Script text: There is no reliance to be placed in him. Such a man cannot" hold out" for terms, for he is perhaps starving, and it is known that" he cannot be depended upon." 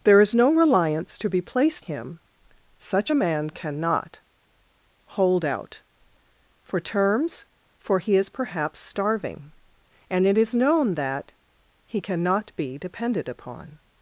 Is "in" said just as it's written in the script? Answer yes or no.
no